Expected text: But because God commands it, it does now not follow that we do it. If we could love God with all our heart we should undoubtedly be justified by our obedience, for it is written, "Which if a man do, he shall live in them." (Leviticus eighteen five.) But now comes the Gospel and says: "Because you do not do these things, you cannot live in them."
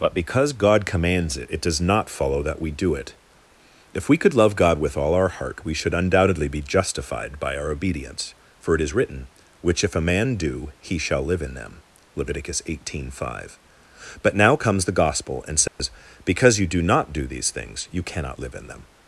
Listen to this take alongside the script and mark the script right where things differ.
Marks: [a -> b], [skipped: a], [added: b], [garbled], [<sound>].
But because God commands it, it does [skipped: now] not follow that we do it. If we could love God with all our heart we should undoubtedly be justified by our obedience, for it is written, "Which if a man do, he shall live in them." (Leviticus eighteen five.) But now comes the Gospel and says: [dropout] "Because you do not do these things, you cannot live in them."